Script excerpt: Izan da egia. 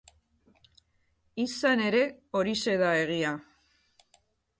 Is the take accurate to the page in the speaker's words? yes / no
no